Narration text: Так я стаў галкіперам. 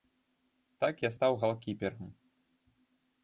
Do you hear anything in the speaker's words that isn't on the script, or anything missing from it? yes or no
no